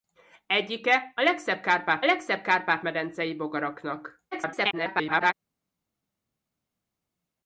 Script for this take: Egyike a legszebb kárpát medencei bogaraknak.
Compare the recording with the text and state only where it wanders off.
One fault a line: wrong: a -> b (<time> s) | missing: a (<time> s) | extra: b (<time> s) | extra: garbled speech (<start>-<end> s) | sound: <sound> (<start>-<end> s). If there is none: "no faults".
extra: legszebb kárpát (2.0 s)
extra: garbled speech (4.3-5.3 s)